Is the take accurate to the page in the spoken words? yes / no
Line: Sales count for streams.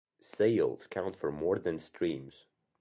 no